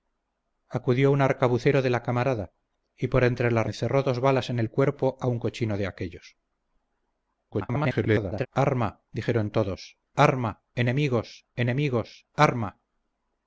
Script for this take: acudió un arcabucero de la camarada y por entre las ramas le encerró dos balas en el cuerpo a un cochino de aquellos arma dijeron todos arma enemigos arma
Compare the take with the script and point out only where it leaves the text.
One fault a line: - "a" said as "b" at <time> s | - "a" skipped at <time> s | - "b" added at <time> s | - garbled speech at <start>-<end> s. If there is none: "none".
- "ramas le" skipped at 3.7 s
- garbled speech at 7.5-8.5 s
- "enemigos" added at 11.5 s